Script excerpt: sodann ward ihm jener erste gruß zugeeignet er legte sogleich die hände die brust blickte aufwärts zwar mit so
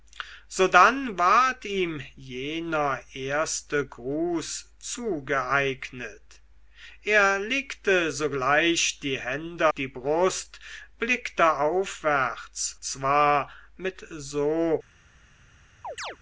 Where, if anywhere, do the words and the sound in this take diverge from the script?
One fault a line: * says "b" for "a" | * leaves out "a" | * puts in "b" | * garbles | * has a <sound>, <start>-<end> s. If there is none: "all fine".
* has a chirp, 15.8-16.2 s